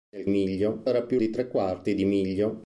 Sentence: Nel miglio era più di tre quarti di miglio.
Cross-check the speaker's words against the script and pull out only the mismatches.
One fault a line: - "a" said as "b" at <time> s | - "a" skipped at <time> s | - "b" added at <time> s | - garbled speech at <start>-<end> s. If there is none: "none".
none